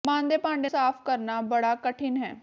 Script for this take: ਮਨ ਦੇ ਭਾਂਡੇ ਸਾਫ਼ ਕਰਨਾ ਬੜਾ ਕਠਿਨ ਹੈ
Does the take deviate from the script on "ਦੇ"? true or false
false